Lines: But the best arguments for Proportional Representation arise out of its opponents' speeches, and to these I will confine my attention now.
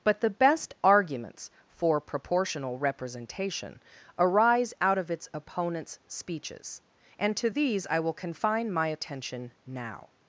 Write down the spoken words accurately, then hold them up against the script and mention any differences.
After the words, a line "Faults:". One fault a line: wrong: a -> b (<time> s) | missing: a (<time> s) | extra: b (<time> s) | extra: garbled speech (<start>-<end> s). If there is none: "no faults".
But the best arguments for Proportional Representation arise out of its opponents' speeches, and to these I will confine my attention now.
Faults:
no faults